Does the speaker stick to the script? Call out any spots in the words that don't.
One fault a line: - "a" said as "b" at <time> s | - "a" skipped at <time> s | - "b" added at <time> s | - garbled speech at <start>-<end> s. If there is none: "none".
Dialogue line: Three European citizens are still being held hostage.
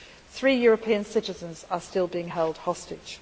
none